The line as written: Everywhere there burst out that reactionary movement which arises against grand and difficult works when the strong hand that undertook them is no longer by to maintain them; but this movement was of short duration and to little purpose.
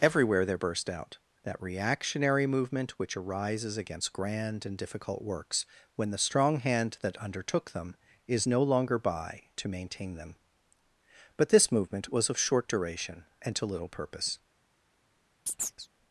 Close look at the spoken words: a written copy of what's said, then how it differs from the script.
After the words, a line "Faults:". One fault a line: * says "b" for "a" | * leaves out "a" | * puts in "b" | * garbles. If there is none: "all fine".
Everywhere there burst out that reactionary movement which arises against grand and difficult works when the strong hand that undertook them is no longer by to maintain them; but this movement was of short duration and to little purpose.
Faults:
all fine